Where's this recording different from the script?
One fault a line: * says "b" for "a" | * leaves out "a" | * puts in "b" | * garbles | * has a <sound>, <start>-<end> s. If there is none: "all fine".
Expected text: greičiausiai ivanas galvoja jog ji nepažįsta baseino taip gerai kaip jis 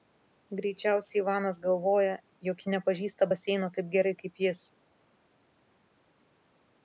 all fine